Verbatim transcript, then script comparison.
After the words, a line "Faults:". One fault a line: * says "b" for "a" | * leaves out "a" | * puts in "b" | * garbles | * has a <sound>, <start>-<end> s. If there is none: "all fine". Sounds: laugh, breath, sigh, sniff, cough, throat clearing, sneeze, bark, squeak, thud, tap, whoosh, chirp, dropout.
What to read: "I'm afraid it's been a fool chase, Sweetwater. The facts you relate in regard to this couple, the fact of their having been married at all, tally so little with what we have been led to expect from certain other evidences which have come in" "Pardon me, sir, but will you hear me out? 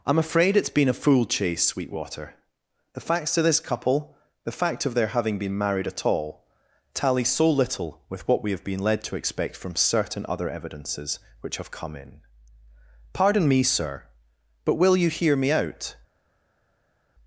"I'm afraid it's been a fool chase, Sweetwater. The facts to this couple, the fact of their having been married at all, tally so little with what we have been led to expect from certain other evidences which have come in" "Pardon me, sir, but will you hear me out?
Faults:
* leaves out "you relate in regard"